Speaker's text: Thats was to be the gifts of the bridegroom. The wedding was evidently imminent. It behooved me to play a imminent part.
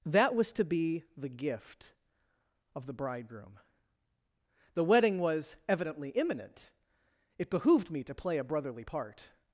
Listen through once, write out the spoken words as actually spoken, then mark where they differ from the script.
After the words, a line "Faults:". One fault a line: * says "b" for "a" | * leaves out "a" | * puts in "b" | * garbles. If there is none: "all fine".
That was to be the gift of the bridegroom. The wedding was evidently imminent. It behooved me to play a brotherly part.
Faults:
* says "That" for "Thats"
* says "gift" for "gifts"
* says "brotherly" for "imminent"